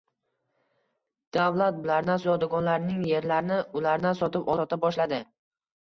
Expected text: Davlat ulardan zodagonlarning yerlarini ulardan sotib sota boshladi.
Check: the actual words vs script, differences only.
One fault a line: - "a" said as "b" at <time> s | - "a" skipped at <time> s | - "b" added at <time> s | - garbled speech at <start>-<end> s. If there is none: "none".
none